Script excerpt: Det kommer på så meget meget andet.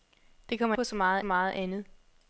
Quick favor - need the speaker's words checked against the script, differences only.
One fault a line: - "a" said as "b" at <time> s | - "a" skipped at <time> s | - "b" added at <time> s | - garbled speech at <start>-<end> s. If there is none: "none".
none